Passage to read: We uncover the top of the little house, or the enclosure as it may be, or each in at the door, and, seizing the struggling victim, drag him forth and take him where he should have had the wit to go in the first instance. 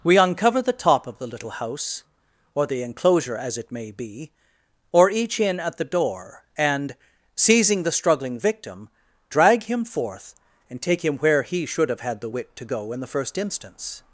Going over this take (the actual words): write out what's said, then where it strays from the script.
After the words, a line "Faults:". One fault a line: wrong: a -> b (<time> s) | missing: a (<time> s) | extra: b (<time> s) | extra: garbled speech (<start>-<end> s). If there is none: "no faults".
We uncover the top of the little house, or the enclosure as it may be, or each in at the door, and, seizing the struggling victim, drag him forth and take him where he should have had the wit to go in the first instance.
Faults:
no faults